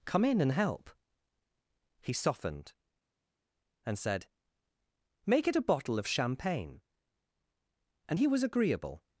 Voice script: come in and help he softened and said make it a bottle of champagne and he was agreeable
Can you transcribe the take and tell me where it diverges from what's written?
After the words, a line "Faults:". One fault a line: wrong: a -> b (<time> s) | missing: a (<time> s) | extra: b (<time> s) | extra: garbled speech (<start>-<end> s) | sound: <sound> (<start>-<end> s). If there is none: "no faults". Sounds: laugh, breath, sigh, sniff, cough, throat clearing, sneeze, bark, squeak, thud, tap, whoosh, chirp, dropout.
come in and help he softened and said make it a bottle of champagne and he was agreeable
Faults:
no faults